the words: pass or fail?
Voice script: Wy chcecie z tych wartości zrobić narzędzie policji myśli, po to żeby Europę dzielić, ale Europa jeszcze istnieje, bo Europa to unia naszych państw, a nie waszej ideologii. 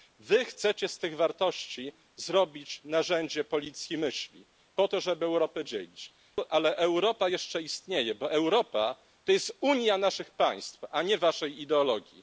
fail